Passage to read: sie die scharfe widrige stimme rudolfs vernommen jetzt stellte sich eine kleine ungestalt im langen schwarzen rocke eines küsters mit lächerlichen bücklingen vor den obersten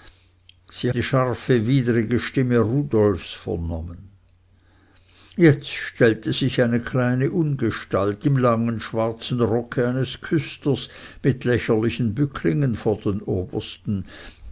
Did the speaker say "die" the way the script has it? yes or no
yes